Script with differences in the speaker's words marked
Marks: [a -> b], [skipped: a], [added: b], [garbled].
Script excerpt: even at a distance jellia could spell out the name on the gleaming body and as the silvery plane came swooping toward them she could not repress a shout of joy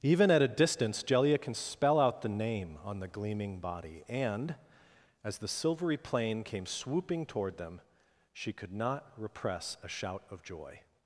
even at a distance jellia [could -> can] spell out the name on the gleaming body and as the silvery plane came swooping toward them she could not repress a shout of joy